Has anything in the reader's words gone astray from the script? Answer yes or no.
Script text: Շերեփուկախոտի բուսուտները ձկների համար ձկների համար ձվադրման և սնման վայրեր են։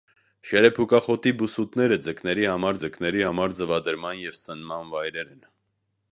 no